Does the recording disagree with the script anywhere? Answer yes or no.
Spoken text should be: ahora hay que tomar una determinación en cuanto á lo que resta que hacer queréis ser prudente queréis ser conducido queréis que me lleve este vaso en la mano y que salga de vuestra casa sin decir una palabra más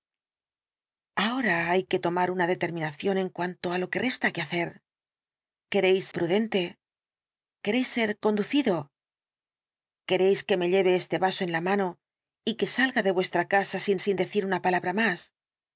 yes